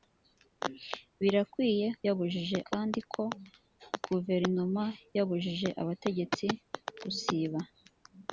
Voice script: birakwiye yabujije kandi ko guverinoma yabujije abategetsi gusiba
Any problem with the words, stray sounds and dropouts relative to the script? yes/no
no